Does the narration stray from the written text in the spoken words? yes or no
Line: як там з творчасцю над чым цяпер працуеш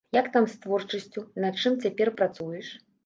no